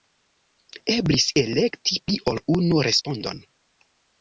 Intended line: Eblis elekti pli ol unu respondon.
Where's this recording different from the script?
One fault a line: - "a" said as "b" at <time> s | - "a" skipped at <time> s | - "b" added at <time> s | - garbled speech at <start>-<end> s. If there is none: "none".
none